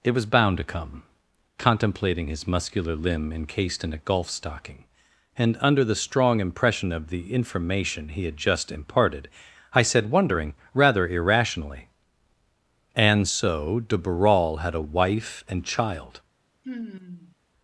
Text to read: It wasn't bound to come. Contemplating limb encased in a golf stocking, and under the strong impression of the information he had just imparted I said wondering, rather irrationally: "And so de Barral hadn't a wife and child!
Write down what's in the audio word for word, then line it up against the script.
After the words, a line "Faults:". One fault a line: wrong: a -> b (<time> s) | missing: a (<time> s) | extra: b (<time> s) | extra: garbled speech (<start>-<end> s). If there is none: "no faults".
It was bound to come. Contemplating his muscular limb encased in a golf stocking, and under the strong impression of the information he had just imparted I said wondering, rather irrationally: "And so de Barral had a wife and child!
Faults:
wrong: wasn't -> was (0.1 s)
extra: his muscular (2.2 s)
wrong: hadn't -> had (14.6 s)